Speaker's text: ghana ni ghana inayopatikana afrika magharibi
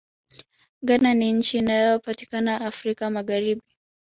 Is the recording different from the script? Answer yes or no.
yes